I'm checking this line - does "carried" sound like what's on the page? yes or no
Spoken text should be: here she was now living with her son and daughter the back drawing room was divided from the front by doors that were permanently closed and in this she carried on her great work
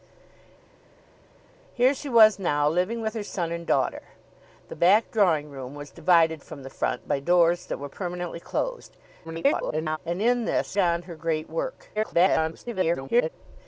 no